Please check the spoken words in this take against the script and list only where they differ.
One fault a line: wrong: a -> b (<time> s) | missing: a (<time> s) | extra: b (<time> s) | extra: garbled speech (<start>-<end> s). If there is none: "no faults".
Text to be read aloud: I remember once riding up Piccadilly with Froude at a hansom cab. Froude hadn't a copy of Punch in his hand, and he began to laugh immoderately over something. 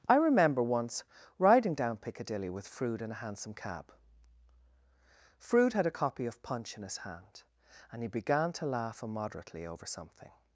wrong: up -> down (1.7 s)
wrong: at -> in (3.0 s)
wrong: hadn't -> had (5.7 s)